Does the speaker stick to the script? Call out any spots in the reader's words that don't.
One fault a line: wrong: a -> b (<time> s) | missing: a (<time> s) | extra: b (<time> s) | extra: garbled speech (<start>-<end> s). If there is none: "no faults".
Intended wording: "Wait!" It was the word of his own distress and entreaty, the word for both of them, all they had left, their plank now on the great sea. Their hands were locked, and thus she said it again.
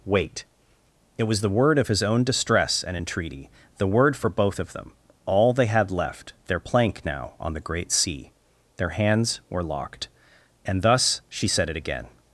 no faults